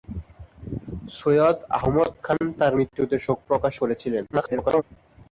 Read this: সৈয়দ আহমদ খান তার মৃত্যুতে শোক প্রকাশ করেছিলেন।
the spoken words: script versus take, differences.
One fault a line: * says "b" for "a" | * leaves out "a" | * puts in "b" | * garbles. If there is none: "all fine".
* garbles